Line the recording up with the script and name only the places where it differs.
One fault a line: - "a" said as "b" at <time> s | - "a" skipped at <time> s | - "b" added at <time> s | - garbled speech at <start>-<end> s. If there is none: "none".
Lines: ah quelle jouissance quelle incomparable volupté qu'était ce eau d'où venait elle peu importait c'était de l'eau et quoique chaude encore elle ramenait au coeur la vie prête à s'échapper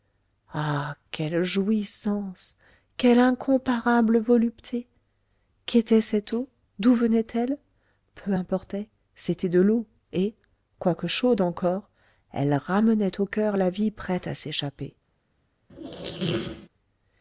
- "ce" said as "cette" at 6.0 s